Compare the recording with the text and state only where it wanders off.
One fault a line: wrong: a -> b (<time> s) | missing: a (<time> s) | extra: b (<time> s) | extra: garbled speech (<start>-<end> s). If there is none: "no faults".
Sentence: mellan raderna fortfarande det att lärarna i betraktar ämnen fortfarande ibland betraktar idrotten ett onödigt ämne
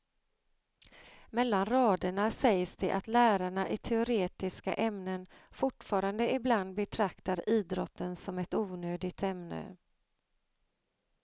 wrong: fortfarande -> sägs (2.3 s)
wrong: betraktar -> teoretiska (3.8 s)
extra: som (8.2 s)